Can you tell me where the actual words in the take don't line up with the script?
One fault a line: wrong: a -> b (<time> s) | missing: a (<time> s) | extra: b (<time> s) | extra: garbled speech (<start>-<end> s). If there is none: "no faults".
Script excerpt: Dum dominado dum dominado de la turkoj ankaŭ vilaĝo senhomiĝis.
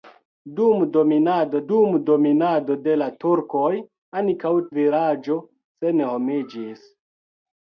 no faults